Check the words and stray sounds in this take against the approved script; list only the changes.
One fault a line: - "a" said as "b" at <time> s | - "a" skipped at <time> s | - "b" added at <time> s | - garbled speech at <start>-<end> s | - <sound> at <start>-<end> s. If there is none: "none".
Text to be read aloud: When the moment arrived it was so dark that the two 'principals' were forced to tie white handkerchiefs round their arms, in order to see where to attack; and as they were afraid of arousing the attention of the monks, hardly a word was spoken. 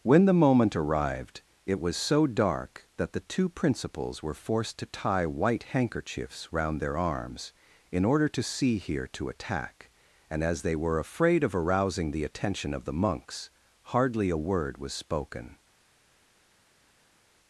- "where" said as "here" at 8.8 s